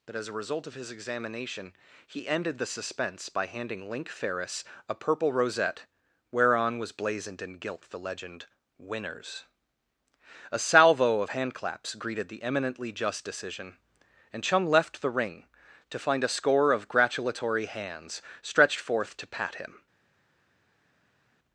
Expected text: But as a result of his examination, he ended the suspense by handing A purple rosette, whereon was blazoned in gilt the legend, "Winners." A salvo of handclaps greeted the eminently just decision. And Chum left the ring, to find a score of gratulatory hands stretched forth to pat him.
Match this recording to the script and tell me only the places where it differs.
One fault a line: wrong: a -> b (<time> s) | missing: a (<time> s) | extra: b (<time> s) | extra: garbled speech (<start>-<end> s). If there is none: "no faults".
extra: Link Ferris (3.9 s)